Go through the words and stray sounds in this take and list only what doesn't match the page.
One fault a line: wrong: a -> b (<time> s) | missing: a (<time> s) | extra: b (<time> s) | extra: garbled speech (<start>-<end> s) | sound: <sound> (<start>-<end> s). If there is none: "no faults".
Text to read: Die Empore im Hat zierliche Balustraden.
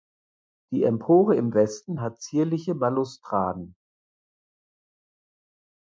extra: Westen (1.5 s)